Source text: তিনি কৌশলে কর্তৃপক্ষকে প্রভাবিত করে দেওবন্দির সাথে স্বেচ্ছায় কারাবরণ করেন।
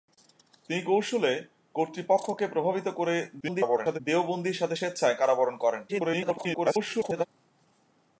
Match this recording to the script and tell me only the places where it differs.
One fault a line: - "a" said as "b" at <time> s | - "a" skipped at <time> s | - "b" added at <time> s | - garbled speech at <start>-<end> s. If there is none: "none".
- garbled speech at 3.4-4.0 s
- garbled speech at 5.9-7.3 s